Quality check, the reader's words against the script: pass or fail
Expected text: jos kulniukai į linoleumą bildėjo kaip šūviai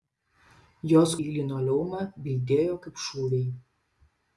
fail